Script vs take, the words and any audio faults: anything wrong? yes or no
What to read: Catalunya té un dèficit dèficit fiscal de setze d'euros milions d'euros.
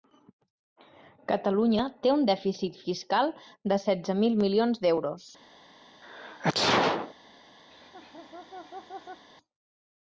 yes